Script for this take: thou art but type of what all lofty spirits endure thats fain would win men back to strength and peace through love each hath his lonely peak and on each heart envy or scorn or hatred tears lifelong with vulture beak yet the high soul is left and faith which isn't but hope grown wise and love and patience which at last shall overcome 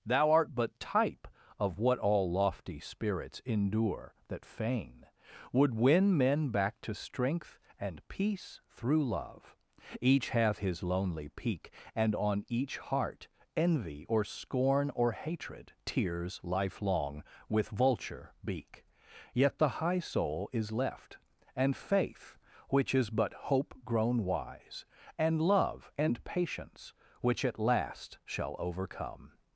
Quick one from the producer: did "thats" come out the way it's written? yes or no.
no